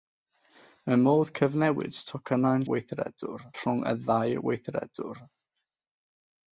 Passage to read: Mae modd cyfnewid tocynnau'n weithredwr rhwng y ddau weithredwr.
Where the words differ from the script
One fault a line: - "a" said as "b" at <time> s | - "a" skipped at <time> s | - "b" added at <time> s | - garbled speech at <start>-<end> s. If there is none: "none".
none